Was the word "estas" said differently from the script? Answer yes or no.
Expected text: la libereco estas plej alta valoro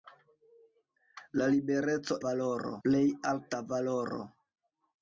yes